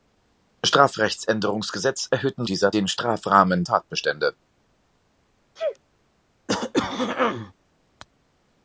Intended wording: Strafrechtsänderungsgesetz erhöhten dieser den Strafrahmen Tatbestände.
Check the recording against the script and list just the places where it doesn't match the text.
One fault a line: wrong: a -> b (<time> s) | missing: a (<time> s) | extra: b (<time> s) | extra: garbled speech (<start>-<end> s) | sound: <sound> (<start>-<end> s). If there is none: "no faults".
sound: sneeze (5.6-5.8 s)
sound: throat clearing (6.5-7.5 s)